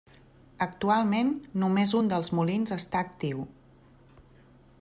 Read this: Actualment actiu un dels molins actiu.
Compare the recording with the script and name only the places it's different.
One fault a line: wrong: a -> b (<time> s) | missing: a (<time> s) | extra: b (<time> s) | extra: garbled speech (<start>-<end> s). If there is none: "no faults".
wrong: actiu -> només (1.6 s)
extra: està (2.8 s)